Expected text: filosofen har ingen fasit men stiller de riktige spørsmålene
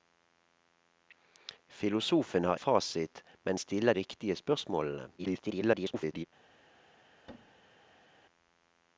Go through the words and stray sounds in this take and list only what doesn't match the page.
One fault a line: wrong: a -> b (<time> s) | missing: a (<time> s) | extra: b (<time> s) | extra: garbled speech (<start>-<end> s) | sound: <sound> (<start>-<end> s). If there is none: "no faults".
missing: ingen (2.6 s)
missing: de (3.9 s)
extra: garbled speech (5.2-6.3 s)
sound: thud (7.3-8.3 s)